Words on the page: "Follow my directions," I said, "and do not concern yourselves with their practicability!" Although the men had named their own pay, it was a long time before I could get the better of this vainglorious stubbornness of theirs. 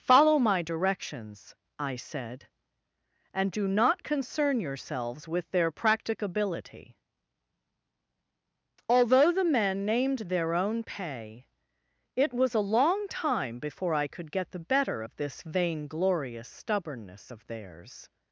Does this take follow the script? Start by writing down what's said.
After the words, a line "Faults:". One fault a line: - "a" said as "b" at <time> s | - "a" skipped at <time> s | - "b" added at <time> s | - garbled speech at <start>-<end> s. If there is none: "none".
"Follow my directions," I said, "and do not concern yourselves with their practicability!" Although the men named their own pay, it was a long time before I could get the better of this vainglorious stubbornness of theirs.
Faults:
- "had" skipped at 9.8 s